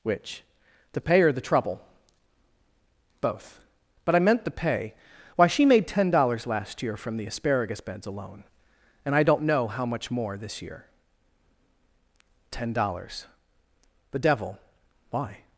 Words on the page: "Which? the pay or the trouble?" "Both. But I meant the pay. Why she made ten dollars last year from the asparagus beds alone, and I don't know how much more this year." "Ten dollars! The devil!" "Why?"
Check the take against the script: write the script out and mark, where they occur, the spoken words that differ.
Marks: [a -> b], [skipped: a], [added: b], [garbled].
"Which? the pay or the trouble?" "Both. But I meant the pay. Why she made ten dollars last year from the asparagus beds alone, and I don't know how much more this year." "Ten dollars! The devil!" "Why?"